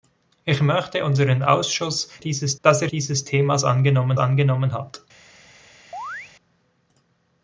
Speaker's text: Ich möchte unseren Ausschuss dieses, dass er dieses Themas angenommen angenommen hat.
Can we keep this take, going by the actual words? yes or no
yes